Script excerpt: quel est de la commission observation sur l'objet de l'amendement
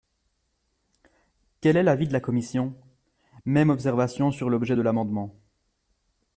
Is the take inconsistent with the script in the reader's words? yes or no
yes